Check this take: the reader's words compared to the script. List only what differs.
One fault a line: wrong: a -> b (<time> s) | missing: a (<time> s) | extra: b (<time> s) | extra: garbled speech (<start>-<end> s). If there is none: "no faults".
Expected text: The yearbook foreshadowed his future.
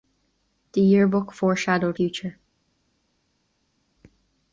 missing: his (2.0 s)